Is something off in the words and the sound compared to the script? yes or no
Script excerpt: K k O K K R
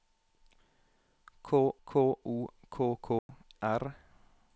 yes